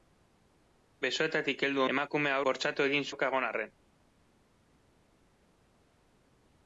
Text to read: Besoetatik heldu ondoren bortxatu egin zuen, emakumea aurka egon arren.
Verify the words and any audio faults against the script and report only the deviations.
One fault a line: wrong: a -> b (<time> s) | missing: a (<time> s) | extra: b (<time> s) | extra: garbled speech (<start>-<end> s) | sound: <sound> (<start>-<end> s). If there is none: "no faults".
wrong: ondoren -> emakumea (2.0 s)
missing: zuen emakumea (3.1 s)